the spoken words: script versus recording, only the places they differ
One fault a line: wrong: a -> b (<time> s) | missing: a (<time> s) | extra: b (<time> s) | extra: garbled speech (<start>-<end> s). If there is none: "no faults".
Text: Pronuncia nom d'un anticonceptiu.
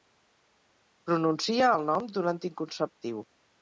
extra: el (1.8 s)